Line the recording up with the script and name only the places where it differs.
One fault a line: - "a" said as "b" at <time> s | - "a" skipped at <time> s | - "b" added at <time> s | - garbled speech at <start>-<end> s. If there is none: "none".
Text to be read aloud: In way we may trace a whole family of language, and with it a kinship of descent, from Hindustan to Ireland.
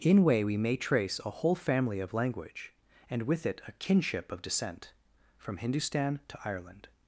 none